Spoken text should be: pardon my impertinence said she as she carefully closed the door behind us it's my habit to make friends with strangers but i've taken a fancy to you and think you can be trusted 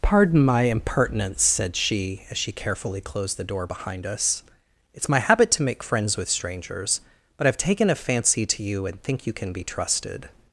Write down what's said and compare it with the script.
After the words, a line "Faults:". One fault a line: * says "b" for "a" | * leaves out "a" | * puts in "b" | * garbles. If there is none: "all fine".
pardon my impertinence said she as she carefully closed the door behind us it's my habit to make friends with strangers but i've taken a fancy to you and think you can be trusted
Faults:
all fine